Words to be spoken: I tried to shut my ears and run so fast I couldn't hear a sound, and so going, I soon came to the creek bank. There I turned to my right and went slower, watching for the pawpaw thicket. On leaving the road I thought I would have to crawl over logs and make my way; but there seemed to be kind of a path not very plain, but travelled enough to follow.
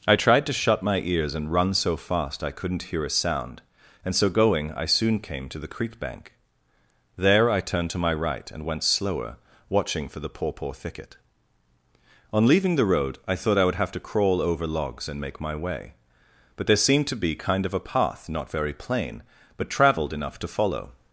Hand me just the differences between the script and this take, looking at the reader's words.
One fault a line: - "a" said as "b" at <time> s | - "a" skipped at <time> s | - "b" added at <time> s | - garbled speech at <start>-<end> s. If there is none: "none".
none